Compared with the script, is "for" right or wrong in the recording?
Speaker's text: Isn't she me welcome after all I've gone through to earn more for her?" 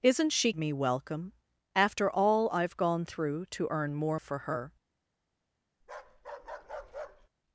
right